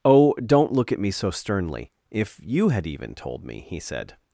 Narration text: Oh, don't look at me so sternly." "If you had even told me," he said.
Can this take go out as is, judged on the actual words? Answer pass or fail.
pass